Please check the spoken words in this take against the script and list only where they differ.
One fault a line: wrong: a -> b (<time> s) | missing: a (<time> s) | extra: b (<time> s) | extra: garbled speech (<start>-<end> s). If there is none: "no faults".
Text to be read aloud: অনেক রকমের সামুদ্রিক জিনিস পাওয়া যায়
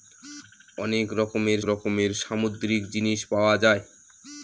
extra: রকমের (1.7 s)